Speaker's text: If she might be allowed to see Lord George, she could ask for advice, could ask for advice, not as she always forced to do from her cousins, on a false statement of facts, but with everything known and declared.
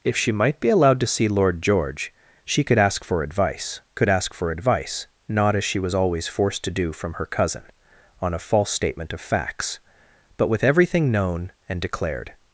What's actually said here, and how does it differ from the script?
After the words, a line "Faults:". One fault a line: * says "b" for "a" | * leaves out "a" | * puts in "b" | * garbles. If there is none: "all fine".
If she might be allowed to see Lord George, she could ask for advice, could ask for advice, not as she was always forced to do from her cousin, on a false statement of facts, but with everything known and declared.
Faults:
* puts in "was"
* says "cousin" for "cousins"